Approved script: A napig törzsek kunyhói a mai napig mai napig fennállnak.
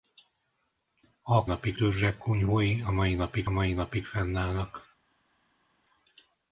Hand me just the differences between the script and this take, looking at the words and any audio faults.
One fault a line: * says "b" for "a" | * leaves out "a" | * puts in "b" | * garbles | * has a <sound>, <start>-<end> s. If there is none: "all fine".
all fine